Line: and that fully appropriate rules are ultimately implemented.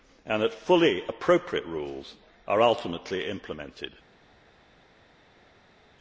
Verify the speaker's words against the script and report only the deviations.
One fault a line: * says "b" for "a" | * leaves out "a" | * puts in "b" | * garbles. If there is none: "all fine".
all fine